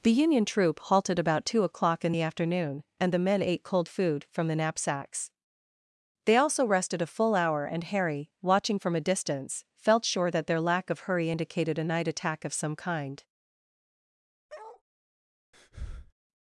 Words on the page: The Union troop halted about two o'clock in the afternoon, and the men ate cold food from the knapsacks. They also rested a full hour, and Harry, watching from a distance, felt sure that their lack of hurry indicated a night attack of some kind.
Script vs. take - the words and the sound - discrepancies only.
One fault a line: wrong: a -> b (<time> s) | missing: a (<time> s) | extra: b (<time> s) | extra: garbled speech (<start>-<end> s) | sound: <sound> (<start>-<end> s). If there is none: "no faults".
sound: bark (14.5-14.8 s)
sound: breath (15.5-16.1 s)